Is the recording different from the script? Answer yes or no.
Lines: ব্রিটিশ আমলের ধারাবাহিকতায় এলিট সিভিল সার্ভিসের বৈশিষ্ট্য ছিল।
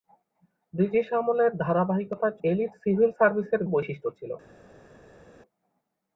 no